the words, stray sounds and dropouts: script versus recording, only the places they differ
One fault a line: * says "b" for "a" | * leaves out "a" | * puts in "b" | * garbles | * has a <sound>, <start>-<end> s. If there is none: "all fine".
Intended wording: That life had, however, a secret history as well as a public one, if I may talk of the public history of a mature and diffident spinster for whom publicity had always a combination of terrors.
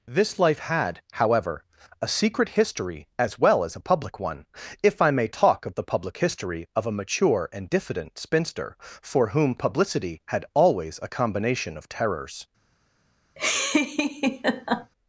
* says "This" for "That"
* has a laugh, 13.4-14.9 s